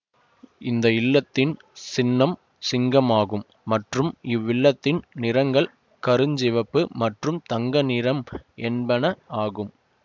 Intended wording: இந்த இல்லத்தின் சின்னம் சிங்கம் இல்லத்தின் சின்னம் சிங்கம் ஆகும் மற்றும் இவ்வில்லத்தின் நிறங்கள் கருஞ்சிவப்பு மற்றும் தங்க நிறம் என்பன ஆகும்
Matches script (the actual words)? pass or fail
fail